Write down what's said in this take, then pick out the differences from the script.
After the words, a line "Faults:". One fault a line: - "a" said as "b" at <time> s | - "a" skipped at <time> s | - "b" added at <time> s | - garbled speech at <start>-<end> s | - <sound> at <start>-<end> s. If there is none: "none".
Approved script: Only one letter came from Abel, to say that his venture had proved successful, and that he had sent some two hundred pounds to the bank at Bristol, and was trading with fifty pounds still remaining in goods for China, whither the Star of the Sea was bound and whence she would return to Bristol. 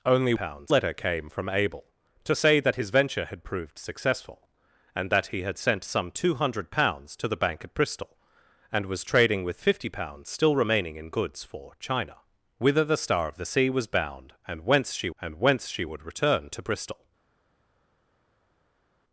Only pounds letter came from Abel, to say that his venture had proved successful, and that he had sent some two hundred pounds to the bank at Bristol, and was trading with fifty pounds still remaining in goods for China, whither the Star of the Sea was bound and whence she and whence she would return to Bristol.
Faults:
- "one" said as "pounds" at 0.3 s
- "and whence she" added at 15.2 s